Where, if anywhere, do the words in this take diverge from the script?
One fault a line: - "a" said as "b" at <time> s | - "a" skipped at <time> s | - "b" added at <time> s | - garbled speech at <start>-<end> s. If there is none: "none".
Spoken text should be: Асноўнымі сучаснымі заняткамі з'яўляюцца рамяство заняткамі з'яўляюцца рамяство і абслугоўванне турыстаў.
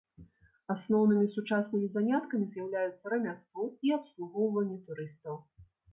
- "заняткамі з'яўляюцца рамяство" skipped at 3.7 s